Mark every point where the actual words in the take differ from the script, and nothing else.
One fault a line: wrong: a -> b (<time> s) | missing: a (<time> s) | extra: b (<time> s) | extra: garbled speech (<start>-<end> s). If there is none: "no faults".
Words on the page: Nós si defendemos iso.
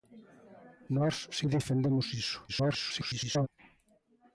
extra: garbled speech (2.5-3.5 s)